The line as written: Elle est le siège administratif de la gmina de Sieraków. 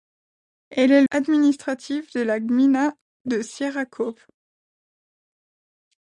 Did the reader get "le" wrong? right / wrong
wrong